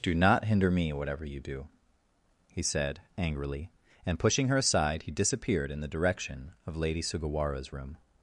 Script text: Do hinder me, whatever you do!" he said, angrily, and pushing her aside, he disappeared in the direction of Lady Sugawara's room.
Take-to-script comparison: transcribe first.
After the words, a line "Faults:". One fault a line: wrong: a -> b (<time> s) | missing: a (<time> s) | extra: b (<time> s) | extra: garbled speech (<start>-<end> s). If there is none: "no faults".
Do not hinder me, whatever you do!" he said, angrily, and pushing her aside, he disappeared in the direction of Lady Sugawara's room.
Faults:
extra: not (0.1 s)